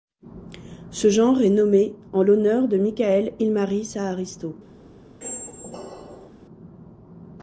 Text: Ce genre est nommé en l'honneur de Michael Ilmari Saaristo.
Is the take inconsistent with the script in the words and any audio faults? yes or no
yes